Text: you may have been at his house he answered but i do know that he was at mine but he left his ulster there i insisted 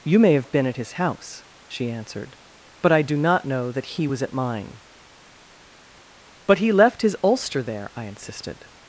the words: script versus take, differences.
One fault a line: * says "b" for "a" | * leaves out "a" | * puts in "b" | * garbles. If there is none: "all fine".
* says "she" for "he"
* puts in "not"